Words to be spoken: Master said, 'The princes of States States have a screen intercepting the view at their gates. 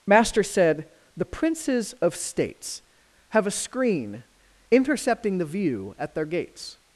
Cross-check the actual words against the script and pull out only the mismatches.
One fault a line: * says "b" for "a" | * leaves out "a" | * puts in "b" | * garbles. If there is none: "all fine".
* leaves out "States"